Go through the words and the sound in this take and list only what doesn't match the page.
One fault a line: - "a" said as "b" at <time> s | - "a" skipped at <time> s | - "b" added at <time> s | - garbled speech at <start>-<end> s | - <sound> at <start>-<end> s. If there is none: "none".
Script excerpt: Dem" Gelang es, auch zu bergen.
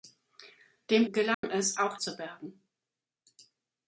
- dropout at 1.3-1.4 s